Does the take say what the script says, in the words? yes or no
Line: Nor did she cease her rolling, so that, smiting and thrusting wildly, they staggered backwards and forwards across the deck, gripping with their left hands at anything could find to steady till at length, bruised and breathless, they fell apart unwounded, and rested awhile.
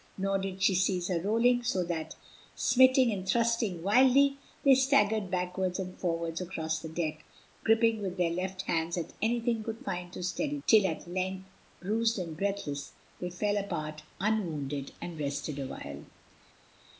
yes